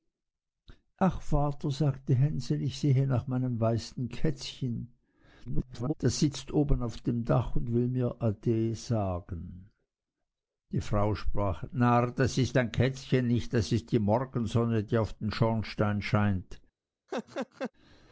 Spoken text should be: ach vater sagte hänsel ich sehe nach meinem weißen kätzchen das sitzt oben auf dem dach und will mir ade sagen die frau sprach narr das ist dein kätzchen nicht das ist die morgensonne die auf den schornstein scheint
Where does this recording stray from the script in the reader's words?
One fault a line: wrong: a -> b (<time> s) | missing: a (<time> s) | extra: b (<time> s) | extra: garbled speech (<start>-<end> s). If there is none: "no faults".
extra: garbled speech (5.5-5.9 s)